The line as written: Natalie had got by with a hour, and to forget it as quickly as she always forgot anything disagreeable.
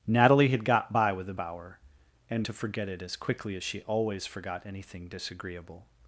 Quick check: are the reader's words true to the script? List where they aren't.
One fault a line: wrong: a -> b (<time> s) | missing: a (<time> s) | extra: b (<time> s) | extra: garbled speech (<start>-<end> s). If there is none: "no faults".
no faults